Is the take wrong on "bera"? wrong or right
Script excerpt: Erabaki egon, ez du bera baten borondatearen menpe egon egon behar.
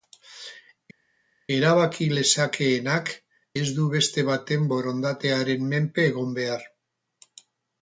wrong